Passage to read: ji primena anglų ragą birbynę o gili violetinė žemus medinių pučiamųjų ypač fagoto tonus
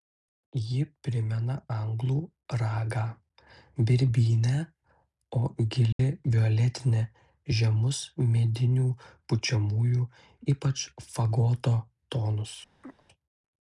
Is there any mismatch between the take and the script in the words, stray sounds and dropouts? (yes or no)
yes